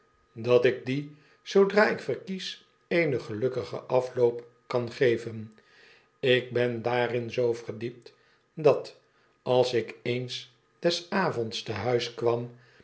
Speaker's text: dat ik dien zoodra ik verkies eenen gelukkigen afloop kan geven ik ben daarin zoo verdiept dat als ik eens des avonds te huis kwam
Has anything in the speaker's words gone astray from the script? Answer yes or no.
no